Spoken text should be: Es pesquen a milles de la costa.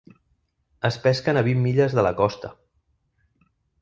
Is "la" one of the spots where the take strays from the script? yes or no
no